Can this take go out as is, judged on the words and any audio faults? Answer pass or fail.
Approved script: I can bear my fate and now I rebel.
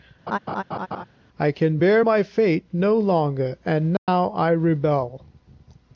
fail